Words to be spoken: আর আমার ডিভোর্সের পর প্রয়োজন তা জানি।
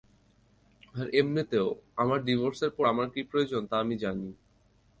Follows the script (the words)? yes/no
no